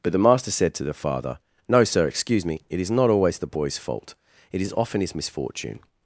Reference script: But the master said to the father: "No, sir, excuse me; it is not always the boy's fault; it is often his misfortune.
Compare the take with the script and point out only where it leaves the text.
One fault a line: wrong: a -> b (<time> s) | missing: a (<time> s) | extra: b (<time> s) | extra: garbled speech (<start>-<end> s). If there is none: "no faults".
no faults